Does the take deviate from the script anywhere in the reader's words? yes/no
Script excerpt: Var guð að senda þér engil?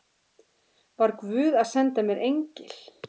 yes